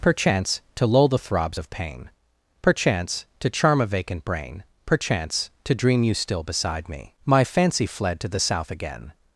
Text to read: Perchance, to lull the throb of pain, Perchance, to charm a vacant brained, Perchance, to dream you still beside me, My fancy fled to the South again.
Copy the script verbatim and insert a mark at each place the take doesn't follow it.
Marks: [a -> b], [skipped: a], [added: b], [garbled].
Perchance, to lull the [throb -> throbs] of pain, Perchance, to charm a vacant [brained, -> brain] Perchance, to dream you still beside me, My fancy fled to the South again.